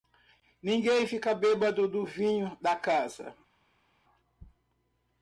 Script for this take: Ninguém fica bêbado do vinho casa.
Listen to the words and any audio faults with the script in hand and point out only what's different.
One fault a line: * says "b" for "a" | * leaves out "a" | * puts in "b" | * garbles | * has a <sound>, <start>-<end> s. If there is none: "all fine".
* puts in "da"